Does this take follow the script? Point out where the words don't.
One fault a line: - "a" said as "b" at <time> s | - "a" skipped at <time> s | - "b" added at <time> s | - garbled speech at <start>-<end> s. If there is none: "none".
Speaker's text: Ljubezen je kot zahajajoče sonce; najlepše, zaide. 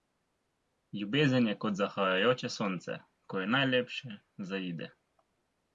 - "ko je" added at 3.3 s